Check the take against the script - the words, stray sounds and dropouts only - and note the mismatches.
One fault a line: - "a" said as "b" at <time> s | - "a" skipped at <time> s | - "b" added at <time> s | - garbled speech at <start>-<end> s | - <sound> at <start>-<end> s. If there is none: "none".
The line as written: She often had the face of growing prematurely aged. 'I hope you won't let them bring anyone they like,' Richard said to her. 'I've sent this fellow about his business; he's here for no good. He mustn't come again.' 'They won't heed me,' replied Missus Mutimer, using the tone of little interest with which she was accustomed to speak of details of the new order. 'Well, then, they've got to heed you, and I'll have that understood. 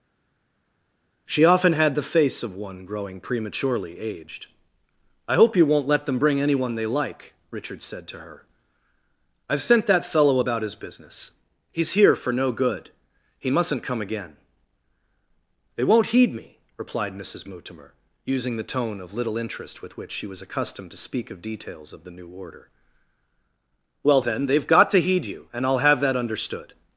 - "one" added at 2.5 s
- "this" said as "that" at 9.9 s